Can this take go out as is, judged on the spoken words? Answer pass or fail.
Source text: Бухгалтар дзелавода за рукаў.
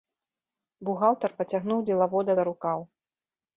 fail